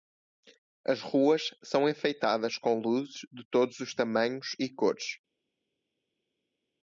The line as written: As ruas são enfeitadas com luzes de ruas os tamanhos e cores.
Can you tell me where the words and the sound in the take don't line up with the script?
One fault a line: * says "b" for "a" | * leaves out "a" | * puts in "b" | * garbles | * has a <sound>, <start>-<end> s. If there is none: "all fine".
* says "todos" for "ruas"